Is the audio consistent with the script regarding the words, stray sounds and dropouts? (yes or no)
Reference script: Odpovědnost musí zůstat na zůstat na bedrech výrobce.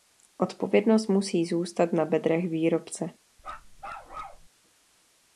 no